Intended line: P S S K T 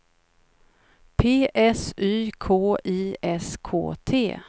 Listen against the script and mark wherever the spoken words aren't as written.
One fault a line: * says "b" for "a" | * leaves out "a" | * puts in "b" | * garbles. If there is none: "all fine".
* puts in "Y K I"